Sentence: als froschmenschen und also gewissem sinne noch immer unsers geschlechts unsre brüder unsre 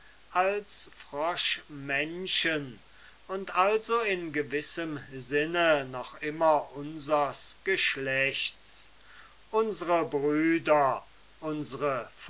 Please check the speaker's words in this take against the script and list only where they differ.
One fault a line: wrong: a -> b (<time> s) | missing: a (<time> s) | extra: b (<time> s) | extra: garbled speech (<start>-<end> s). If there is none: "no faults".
extra: in (4.0 s)